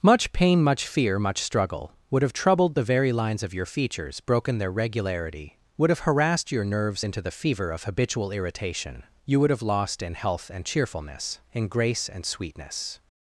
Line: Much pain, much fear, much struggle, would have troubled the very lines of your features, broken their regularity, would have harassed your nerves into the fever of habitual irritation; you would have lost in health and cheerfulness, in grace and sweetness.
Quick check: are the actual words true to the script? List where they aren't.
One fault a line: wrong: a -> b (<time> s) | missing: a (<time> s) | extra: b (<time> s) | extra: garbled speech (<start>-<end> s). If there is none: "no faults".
no faults